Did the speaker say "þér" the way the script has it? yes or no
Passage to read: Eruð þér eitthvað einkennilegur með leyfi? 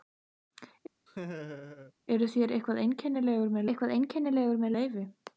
yes